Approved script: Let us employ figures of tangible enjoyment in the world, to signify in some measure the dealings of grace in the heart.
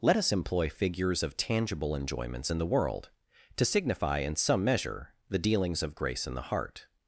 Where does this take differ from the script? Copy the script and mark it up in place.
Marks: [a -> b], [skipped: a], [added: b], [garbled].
Let us employ figures of tangible [enjoyment -> enjoyments] in the world, to signify in some measure the dealings of grace in the heart.